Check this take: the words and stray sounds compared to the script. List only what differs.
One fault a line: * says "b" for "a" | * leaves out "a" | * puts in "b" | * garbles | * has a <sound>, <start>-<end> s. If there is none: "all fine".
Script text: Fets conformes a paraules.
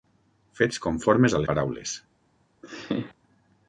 * has a laugh, 2.6-3.1 s